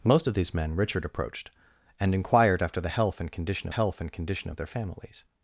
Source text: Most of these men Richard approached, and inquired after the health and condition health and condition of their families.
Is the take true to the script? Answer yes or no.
yes